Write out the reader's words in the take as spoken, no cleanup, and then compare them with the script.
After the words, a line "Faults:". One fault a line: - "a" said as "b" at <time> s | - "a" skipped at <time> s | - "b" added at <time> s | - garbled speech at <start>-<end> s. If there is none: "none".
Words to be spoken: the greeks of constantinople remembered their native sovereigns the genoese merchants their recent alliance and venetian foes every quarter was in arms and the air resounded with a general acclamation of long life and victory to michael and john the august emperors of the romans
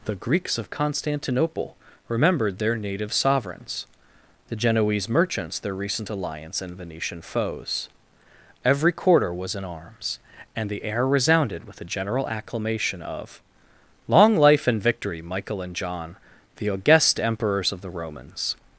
the greeks of constantinople remembered their native sovereigns the genoese merchants their recent alliance and venetian foes every quarter was in arms and the air resounded with a general acclamation of long life and victory michael and john the august emperors of the romans
Faults:
- "to" skipped at 15.2 s